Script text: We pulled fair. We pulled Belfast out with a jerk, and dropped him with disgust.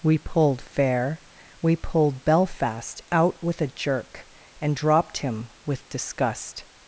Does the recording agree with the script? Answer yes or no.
yes